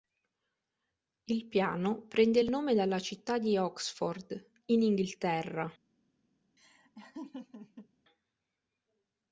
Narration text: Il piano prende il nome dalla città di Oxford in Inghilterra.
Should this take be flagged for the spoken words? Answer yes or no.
no